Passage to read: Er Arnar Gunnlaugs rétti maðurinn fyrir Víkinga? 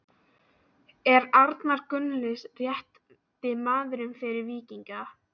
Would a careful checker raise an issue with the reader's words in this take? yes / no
no